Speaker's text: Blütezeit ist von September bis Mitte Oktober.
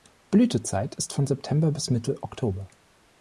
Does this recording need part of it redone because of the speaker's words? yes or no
no